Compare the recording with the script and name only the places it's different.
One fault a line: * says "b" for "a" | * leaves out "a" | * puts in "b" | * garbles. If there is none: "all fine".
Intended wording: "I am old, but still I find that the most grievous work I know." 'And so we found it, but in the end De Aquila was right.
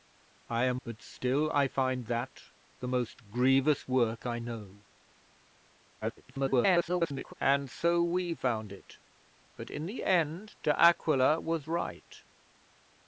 * leaves out "old"
* garbles